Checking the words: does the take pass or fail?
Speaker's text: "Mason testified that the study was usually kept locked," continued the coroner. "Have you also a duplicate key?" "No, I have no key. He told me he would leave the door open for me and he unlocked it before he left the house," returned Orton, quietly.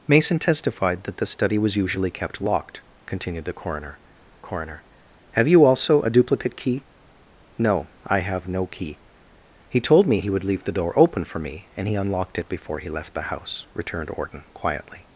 fail